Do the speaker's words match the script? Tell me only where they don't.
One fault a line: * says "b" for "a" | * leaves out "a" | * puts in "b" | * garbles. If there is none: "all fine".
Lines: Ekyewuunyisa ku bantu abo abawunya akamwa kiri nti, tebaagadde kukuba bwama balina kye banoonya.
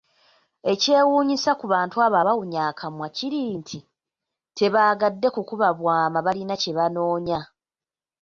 all fine